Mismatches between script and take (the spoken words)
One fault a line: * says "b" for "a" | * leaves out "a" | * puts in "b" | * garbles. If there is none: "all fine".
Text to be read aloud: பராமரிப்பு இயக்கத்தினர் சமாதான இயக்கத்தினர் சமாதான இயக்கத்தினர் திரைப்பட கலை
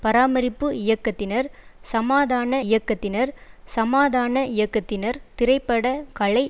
all fine